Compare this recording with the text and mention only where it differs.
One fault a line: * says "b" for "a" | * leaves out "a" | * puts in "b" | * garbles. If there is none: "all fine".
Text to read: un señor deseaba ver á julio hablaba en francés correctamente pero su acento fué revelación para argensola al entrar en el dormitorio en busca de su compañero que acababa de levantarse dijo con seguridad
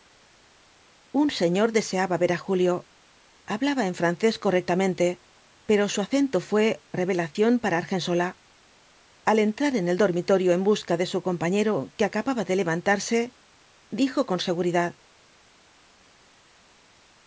all fine